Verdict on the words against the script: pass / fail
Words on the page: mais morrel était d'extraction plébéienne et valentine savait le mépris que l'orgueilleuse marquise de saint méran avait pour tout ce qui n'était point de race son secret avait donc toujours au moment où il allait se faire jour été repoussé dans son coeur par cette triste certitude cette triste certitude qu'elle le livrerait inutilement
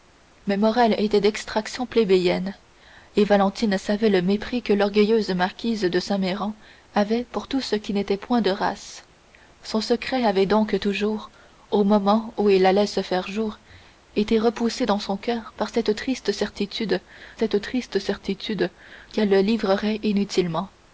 pass